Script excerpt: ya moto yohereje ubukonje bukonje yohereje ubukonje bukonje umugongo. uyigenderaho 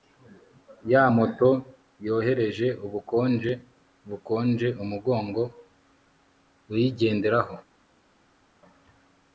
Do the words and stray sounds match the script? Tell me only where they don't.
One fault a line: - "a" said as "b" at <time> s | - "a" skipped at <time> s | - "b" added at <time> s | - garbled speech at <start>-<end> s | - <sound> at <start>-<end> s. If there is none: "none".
- "yohereje ubukonje bukonje" skipped at 4.7 s